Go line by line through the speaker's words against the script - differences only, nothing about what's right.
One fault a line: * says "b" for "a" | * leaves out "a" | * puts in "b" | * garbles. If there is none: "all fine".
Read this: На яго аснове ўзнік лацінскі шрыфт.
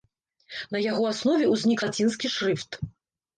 all fine